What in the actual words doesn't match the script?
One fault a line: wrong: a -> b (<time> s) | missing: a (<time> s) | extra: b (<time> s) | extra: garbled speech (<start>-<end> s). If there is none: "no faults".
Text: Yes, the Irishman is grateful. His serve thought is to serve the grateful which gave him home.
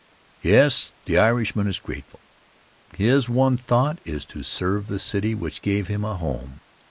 wrong: serve -> one (3.3 s)
wrong: grateful -> city (5.0 s)
extra: a (6.0 s)